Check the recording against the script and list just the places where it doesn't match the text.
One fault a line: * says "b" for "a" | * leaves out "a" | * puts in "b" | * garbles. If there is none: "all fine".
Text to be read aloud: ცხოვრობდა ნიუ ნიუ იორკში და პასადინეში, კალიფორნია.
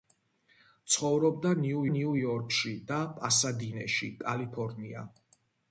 all fine